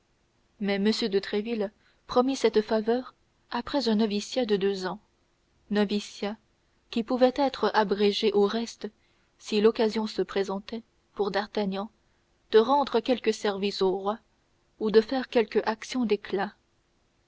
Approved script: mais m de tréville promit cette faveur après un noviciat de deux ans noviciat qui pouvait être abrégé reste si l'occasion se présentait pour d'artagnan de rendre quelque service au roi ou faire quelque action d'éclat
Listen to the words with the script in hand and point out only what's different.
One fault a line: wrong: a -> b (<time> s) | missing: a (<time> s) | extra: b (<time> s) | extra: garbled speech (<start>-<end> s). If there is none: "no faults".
extra: au (8.3 s)
extra: de (14.9 s)